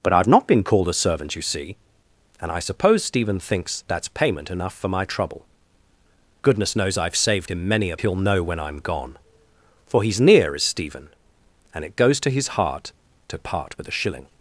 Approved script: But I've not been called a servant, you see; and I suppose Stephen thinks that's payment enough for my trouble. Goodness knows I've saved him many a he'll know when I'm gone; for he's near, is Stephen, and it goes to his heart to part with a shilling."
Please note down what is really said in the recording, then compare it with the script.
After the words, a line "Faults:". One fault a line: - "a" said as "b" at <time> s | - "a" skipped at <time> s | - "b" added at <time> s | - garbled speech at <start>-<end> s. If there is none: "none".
But I've not been called a servant, you see; and I suppose Stephen thinks that's payment enough for my trouble. Goodness knows I've saved him many a he'll know when I'm gone; for he's near, is Stephen, and it goes to his heart to part with a shilling."
Faults:
none